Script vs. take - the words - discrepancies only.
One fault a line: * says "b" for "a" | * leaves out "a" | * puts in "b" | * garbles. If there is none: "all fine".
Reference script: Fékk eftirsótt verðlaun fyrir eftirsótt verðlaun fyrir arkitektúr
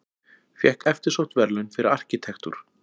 * leaves out "eftirsótt verðlaun fyrir"